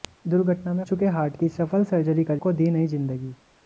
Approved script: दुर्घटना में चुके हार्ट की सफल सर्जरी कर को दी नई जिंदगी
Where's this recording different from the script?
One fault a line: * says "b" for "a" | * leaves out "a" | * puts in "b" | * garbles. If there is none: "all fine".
all fine